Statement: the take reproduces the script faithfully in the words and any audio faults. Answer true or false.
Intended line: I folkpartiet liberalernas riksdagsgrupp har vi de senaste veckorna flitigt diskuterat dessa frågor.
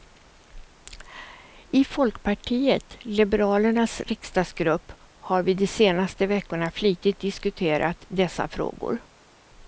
true